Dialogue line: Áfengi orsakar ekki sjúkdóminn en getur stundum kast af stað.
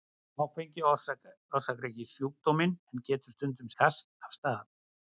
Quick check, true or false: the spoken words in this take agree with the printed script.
true